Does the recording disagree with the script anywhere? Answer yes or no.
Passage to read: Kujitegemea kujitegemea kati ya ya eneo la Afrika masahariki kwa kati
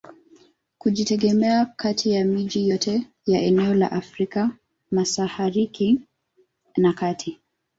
yes